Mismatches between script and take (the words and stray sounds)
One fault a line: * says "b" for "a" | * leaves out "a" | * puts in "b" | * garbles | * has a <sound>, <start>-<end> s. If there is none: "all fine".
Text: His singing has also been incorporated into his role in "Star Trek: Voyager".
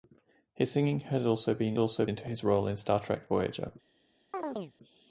* says "also" for "incorporated"
* has a chirp, 4.3-4.7 s